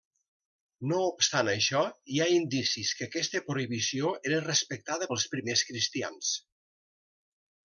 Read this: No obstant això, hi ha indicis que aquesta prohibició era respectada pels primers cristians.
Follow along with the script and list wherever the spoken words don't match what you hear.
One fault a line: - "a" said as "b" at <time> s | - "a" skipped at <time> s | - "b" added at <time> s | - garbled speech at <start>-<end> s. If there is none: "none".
none